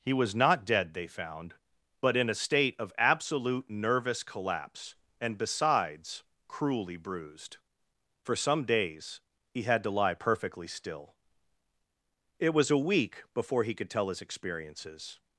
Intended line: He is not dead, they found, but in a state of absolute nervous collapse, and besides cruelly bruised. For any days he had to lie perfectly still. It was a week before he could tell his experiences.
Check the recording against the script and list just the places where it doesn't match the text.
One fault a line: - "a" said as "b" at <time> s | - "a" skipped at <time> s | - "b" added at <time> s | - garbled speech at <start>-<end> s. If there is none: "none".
- "is" said as "was" at 0.1 s
- "any" said as "some" at 8.3 s